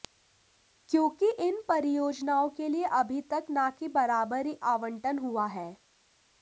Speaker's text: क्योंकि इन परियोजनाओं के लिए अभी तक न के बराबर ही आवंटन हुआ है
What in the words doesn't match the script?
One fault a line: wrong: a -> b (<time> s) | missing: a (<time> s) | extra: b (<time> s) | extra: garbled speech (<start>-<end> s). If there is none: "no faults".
no faults